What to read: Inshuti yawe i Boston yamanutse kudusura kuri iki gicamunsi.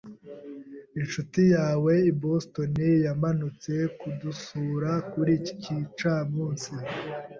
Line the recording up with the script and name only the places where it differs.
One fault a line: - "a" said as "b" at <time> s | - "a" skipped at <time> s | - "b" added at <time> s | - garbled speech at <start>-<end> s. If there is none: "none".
none